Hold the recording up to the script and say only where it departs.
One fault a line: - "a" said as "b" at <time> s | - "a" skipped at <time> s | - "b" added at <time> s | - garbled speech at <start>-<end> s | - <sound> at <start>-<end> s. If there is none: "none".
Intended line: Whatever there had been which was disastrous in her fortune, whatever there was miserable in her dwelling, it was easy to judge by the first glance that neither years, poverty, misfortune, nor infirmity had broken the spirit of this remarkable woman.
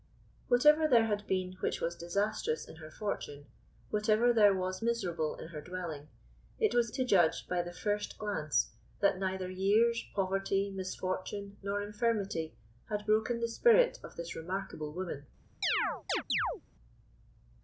- "easy" skipped at 6.9 s
- chirp at 15.6-16.6 s